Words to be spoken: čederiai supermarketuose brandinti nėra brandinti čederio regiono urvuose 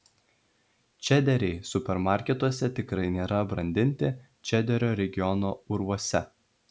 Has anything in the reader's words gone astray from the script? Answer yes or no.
yes